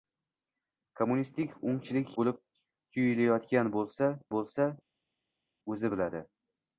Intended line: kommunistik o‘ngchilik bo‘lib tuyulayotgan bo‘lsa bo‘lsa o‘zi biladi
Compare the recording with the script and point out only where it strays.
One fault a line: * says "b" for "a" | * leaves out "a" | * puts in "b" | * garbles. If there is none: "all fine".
all fine